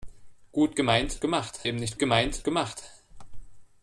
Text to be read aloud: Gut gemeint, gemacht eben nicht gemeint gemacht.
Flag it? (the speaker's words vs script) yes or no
no